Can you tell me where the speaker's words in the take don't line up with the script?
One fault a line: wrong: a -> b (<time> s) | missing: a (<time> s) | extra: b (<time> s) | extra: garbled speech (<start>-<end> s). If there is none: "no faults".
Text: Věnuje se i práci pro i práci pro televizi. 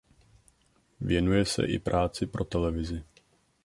missing: i práci pro (2.4 s)